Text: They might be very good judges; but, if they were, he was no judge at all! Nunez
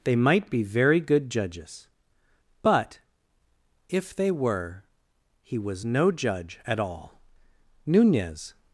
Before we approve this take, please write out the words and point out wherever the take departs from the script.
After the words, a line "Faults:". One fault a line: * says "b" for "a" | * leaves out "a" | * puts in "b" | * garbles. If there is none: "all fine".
They might be very good judges; but, if they were, he was no judge at all! Nunez
Faults:
all fine